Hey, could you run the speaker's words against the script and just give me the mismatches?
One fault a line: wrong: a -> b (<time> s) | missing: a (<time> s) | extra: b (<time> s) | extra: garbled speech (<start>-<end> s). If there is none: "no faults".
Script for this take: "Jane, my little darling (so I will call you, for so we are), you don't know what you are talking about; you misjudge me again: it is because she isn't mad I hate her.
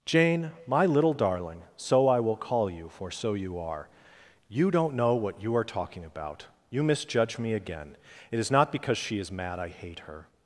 wrong: we -> you (3.4 s)
extra: not (8.5 s)
wrong: isn't -> is (9.2 s)